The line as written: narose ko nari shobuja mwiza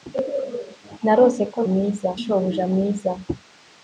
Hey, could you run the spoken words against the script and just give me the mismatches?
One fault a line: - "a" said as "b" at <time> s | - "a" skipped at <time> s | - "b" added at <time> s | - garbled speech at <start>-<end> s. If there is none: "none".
- "nari" said as "mwiza" at 1.7 s